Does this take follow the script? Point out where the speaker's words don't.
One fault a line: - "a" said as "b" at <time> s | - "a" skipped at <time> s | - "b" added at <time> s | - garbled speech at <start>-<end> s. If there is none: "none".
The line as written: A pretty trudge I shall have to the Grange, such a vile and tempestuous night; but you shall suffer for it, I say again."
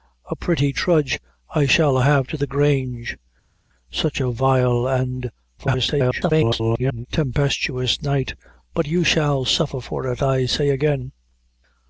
- garbled speech at 5.6-7.1 s